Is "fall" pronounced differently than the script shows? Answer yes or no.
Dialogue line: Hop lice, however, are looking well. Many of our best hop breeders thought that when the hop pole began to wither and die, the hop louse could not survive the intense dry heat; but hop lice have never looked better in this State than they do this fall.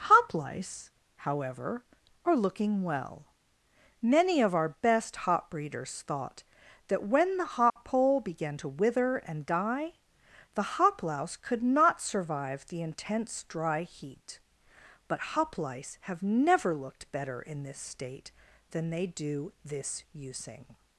yes